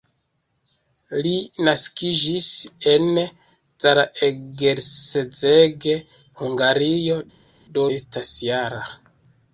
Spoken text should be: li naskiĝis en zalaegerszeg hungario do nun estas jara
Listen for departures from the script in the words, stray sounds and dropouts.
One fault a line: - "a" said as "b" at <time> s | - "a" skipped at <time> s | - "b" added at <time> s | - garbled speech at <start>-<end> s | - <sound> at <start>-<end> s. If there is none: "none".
- "nun" skipped at 7.9 s